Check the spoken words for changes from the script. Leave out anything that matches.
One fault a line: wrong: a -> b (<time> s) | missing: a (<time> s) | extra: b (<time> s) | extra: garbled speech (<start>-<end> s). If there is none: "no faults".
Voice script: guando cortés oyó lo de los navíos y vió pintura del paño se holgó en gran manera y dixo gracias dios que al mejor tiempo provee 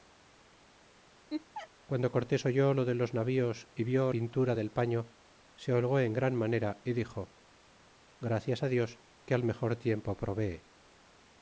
no faults